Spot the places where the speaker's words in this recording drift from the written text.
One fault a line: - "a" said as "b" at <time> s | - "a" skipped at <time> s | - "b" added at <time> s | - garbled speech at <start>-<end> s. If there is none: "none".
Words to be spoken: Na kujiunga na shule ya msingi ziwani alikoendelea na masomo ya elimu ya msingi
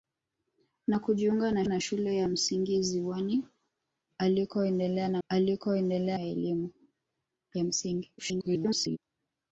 - "na" added at 1.7 s
- "masomo" said as "alikoendelea" at 5.3 s
- garbled speech at 8.2-9.0 s